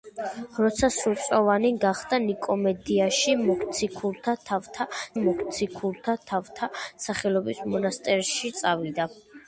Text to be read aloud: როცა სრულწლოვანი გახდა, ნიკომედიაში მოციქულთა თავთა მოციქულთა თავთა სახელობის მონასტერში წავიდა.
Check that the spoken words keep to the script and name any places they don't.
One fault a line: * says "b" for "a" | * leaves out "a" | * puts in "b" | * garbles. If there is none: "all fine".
all fine